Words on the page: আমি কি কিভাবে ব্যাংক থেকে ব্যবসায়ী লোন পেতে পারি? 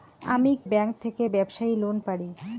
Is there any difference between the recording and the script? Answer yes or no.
yes